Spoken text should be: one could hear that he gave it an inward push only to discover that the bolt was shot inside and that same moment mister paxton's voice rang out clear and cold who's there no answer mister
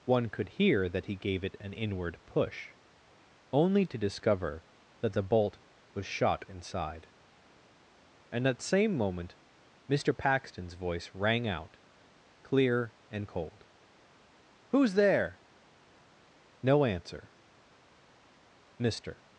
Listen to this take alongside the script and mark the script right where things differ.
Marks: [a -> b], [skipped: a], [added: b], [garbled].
one could hear that he gave it an inward push only to discover that the bolt was shot inside and that same moment mister paxton's voice rang out clear and cold who's there no answer mister